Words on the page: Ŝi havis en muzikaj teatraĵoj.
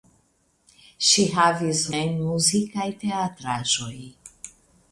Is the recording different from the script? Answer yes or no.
no